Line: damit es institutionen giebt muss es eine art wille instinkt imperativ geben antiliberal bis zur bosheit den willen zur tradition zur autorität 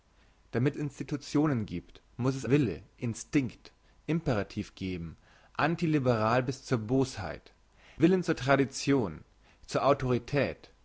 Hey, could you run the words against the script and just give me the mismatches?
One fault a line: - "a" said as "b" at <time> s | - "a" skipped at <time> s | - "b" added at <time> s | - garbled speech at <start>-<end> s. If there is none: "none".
- "es" skipped at 0.8 s
- "eine art" skipped at 2.4 s
- "den" skipped at 7.5 s